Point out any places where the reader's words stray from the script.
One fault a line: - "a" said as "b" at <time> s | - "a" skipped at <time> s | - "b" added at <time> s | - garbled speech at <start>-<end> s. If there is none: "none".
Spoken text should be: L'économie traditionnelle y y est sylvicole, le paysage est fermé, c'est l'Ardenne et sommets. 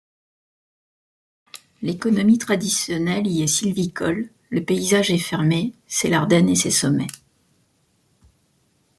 - "y" skipped at 3.4 s
- "ses" added at 6.6 s